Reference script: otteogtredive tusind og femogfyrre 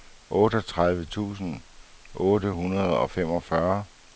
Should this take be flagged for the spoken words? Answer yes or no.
yes